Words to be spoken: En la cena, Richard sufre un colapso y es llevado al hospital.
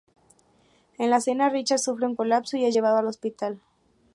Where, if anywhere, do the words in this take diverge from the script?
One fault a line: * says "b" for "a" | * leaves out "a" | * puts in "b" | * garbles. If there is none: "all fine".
all fine